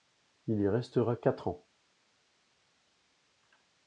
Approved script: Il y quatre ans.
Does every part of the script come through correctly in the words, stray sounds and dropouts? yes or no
no